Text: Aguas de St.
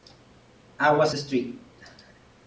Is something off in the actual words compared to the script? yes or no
no